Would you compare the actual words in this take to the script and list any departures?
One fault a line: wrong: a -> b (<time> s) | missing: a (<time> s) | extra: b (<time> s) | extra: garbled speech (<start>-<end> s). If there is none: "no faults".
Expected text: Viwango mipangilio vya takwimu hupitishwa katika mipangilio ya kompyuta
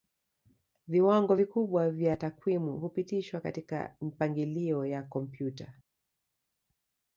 wrong: mipangilio -> vikubwa (1.3 s)